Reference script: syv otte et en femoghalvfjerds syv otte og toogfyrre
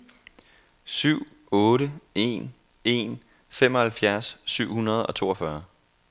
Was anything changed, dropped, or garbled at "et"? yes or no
yes